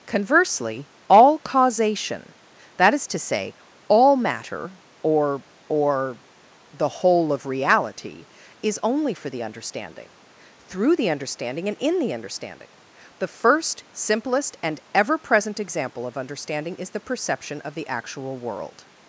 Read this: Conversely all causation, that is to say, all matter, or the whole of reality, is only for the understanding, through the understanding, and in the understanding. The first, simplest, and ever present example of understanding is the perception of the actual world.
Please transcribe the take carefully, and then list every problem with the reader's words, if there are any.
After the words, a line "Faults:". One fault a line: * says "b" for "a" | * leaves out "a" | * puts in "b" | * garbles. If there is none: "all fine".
Conversely all causation, that is to say, all matter, or or the whole of reality, is only for the understanding, through the understanding, and in the understanding. The first, simplest, and ever present example of understanding is the perception of the actual world.
Faults:
* puts in "or"